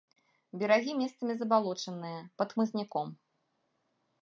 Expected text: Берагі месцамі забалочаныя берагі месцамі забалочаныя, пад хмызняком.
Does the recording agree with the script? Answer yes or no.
no